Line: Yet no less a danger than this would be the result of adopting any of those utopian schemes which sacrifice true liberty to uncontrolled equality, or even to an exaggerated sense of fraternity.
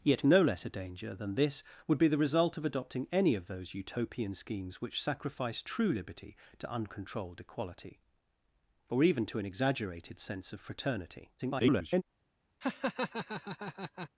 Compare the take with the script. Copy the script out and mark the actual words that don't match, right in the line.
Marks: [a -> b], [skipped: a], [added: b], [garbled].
Yet no less a danger than this would be the result of adopting any of those utopian schemes which sacrifice true liberty to uncontrolled equality, or even to an exaggerated sense of fraternity. [garbled]